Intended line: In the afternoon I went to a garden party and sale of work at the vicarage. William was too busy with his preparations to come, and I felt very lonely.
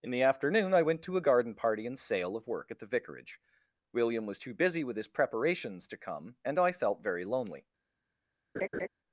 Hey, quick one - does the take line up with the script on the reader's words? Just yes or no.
yes